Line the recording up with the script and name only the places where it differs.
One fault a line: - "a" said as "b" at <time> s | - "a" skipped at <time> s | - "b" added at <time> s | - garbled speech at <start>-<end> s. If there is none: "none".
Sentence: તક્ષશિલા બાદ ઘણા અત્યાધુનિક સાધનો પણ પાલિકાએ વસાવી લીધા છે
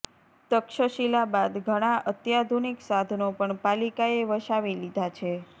none